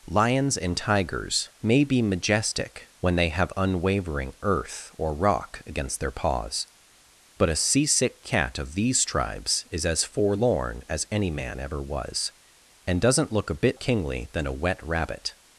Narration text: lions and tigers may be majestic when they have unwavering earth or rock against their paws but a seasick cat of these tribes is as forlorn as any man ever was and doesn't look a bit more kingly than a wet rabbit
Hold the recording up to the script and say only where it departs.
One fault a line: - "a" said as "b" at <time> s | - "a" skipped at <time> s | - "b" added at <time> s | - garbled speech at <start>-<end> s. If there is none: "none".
- "more" skipped at 13.8 s